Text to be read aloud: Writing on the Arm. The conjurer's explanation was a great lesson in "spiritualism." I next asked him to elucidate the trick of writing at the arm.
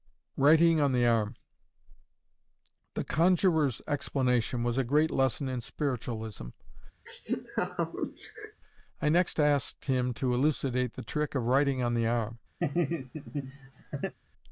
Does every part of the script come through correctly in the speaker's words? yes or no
no